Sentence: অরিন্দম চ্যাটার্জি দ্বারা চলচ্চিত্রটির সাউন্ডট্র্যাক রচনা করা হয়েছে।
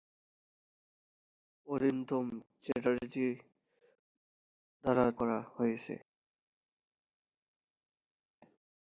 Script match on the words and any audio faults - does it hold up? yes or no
no